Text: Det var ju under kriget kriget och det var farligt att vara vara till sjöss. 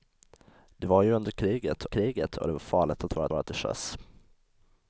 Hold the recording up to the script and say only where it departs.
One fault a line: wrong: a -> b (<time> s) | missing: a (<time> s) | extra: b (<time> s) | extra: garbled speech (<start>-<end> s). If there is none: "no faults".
no faults